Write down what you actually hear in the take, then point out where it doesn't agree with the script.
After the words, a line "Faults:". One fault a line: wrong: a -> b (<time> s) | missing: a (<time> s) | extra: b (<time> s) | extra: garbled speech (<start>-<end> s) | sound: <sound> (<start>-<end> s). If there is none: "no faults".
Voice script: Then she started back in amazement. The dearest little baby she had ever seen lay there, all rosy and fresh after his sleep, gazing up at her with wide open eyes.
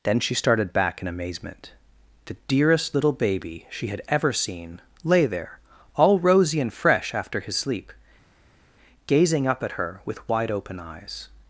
Then she started back in amazement. The dearest little baby she had ever seen lay there, all rosy and fresh after his sleep, gazing up at her with wide open eyes.
Faults:
no faults